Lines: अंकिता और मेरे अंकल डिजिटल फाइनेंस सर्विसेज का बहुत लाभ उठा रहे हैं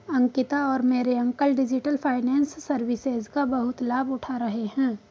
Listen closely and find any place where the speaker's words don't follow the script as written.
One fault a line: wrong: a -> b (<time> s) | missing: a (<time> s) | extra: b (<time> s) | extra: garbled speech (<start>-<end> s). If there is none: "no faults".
no faults